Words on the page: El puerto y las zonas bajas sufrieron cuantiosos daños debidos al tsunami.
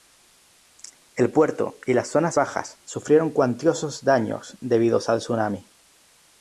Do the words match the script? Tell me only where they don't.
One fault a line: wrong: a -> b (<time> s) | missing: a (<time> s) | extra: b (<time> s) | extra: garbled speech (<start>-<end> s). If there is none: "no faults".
no faults